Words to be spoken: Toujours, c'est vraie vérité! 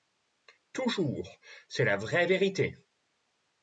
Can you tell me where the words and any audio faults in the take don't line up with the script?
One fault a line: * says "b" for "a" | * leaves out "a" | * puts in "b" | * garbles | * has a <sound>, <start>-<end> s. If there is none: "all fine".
* puts in "la"